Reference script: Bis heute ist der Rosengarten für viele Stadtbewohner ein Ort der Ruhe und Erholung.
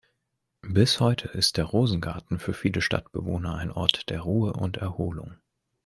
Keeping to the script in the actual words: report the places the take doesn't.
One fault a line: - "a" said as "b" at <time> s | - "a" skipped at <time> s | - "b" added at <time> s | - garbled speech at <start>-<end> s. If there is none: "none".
none